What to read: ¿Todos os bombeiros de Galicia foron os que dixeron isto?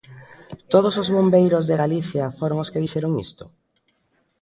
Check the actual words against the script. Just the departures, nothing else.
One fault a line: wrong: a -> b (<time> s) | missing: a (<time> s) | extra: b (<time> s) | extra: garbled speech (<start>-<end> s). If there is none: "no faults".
no faults